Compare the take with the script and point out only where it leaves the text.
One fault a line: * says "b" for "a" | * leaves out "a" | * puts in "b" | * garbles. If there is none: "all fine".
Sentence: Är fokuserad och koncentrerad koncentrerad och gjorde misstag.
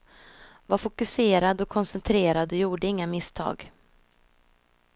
* says "Var" for "Är"
* leaves out "koncentrerad"
* puts in "inga"